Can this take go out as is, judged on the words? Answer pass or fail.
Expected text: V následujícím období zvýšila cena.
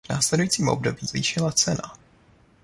pass